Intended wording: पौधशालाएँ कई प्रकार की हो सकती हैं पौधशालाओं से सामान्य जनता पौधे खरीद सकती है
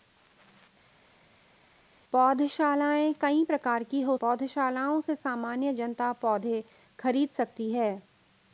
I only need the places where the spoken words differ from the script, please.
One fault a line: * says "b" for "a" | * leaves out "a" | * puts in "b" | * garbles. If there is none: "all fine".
* leaves out "सकती हैं"